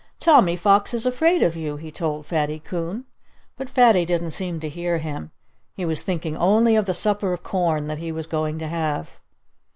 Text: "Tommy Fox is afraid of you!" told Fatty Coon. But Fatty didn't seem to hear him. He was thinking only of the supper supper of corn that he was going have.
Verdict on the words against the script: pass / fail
fail